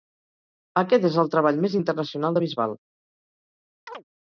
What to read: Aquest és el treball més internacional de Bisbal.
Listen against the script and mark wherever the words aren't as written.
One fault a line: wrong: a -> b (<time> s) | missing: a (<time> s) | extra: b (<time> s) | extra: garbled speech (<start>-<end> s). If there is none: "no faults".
no faults